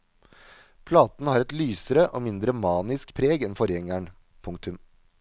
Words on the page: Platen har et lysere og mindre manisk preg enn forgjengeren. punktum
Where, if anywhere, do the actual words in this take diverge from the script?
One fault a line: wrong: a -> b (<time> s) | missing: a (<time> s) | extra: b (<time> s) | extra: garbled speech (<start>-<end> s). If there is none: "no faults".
no faults